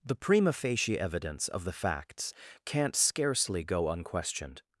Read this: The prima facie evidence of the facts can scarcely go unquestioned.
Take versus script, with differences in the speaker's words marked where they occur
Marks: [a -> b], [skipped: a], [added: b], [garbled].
The prima facie evidence of the facts [can -> can't] scarcely go unquestioned.